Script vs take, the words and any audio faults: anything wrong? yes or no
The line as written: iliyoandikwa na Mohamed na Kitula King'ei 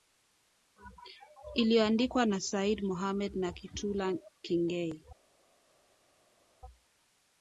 yes